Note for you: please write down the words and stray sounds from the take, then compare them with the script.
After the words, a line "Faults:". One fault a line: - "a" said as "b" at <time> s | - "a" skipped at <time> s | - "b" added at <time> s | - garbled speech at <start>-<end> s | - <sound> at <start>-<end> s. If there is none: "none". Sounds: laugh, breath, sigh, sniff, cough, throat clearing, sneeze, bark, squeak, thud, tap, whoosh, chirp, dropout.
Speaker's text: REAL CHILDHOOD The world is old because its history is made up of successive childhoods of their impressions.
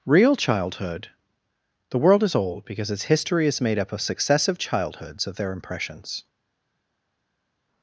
REAL CHILDHOOD The world is old because its history is made up of successive childhoods of their impressions.
Faults:
none